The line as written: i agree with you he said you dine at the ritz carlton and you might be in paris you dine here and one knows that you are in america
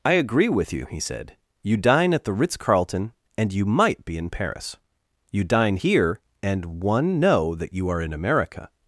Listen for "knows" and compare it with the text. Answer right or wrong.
wrong